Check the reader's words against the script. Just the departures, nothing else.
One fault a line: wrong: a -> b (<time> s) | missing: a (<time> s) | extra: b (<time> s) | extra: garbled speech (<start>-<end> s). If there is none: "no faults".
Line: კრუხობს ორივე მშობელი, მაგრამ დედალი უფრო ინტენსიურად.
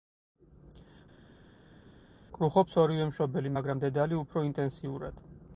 no faults